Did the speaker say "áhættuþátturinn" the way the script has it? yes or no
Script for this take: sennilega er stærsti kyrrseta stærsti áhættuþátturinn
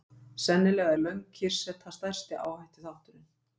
yes